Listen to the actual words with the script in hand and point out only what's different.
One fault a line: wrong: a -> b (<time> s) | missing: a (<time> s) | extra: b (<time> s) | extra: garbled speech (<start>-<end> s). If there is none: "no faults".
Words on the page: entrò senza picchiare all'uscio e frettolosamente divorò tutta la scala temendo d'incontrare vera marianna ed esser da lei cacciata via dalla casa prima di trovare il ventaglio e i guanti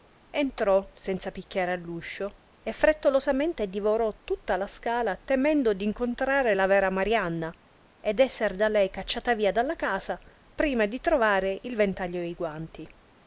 extra: la (6.5 s)